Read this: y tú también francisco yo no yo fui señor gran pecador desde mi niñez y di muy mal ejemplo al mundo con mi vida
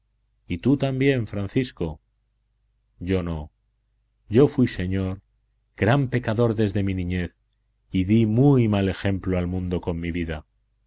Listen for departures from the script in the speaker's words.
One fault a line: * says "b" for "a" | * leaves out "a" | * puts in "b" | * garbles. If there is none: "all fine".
all fine